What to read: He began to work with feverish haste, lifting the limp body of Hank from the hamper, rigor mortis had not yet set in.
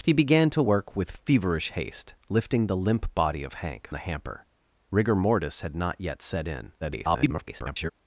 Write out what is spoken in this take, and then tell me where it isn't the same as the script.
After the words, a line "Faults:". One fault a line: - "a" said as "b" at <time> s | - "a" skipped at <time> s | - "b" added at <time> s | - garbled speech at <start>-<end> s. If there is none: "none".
He began to work with feverish haste, lifting the limp body of Hank the hamper, rigor mortis had not yet set in. [garbled]
Faults:
- "from" skipped at 3.9 s
- garbled speech at 6.8-7.9 s